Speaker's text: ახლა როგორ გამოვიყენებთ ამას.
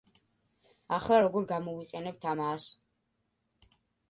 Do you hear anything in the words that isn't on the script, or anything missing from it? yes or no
no